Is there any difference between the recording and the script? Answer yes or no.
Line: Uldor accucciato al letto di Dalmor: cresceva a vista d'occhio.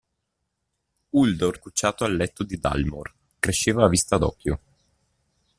no